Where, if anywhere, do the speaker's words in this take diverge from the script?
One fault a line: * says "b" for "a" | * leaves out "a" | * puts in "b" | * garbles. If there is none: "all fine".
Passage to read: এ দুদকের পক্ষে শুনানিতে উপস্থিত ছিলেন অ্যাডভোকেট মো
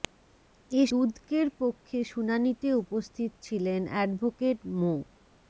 all fine